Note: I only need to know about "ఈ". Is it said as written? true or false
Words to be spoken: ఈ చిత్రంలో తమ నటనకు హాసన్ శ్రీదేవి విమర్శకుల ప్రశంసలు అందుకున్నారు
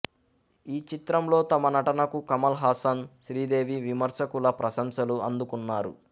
true